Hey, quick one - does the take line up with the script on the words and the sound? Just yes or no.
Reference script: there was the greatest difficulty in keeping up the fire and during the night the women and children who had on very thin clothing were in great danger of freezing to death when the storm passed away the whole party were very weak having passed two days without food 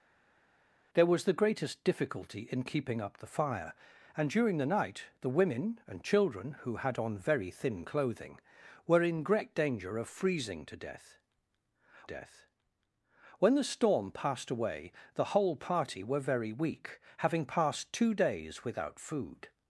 no